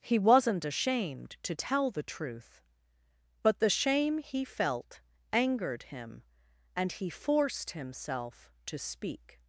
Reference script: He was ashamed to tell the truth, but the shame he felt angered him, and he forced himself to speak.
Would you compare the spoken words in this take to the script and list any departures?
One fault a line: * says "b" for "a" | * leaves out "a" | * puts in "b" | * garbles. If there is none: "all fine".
* says "wasn't" for "was"